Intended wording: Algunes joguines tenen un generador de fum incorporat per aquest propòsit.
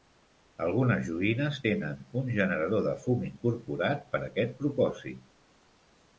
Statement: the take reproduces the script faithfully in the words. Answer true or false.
true